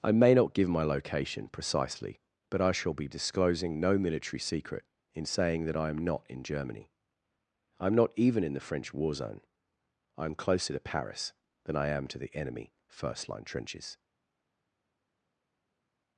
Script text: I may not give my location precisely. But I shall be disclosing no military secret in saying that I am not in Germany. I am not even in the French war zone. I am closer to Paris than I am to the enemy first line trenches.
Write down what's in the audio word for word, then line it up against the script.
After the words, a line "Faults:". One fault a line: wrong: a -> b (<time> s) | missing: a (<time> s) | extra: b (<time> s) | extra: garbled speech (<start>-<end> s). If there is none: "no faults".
I may not give my location precisely. But I shall be disclosing no military secret in saying that I am not in Germany. I am not even in the French war zone. I am closer to Paris than I am to the enemy first line trenches.
Faults:
no faults